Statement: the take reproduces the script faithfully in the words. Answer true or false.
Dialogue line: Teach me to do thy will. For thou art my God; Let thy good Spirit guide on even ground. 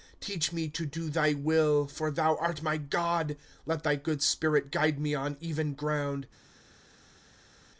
false